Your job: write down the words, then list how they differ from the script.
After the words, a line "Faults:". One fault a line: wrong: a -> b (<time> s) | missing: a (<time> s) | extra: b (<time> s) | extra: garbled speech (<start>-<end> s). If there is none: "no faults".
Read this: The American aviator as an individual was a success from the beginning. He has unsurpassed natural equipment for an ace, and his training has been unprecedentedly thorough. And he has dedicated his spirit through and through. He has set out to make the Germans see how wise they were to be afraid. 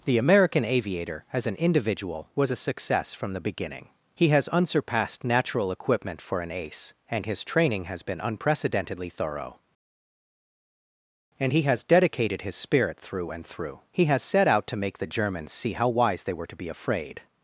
The American aviator as an individual was a success from the beginning. He has unsurpassed natural equipment for an ace, and his training has been unprecedentedly thorough. And he has dedicated his spirit through and through. He has set out to make the Germans see how wise they were to be afraid.
Faults:
no faults